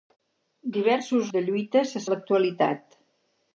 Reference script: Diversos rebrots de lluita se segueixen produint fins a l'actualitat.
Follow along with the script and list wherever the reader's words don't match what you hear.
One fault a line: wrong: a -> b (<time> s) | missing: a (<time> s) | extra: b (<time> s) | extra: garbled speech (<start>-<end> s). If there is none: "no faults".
missing: rebrots (1.3 s)
missing: segueixen produint fins (2.0 s)